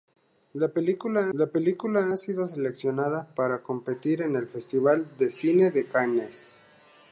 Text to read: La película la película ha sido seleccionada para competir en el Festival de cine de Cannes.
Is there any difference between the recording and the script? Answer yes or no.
no